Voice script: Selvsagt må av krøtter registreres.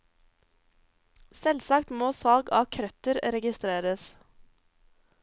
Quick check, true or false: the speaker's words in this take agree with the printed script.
false